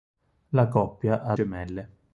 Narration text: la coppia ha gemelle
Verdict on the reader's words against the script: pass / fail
pass